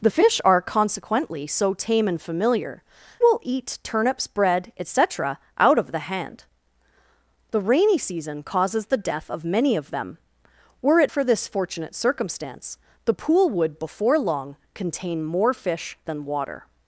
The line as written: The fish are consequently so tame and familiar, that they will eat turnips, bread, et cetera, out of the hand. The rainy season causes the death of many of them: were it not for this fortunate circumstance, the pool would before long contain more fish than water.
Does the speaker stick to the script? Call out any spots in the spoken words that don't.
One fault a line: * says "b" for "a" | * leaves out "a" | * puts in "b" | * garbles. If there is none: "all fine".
* leaves out "that they"
* leaves out "not"